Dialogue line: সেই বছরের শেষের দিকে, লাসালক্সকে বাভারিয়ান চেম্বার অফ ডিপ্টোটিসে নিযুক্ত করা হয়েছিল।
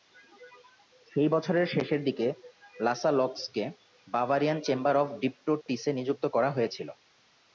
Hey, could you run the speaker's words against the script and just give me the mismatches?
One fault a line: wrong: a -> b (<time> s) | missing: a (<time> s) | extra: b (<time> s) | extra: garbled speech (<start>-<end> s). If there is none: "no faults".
no faults